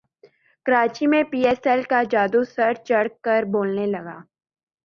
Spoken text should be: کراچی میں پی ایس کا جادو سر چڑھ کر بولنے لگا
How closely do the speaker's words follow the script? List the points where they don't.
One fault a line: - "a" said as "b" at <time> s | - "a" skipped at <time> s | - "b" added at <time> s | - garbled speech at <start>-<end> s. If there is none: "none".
- "ایل" added at 1.7 s